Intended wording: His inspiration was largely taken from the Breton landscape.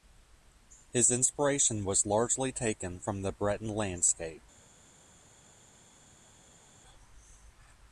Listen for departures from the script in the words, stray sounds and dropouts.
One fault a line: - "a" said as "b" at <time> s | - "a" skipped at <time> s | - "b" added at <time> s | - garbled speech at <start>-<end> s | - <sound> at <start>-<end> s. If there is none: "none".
none